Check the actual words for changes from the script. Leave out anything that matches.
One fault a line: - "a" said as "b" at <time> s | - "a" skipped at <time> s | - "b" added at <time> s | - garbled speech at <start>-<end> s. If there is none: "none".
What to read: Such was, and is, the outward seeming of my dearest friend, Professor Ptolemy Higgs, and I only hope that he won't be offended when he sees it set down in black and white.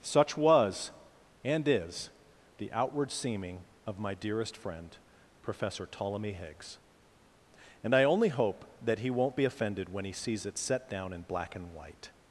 none